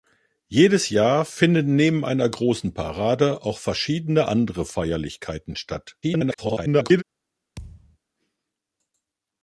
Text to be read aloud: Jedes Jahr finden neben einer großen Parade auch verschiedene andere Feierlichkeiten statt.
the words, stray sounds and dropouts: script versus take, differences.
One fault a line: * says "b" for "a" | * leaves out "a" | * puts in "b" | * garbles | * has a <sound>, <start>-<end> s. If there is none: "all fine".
* garbles
* has a thud, 7.6-8.0 s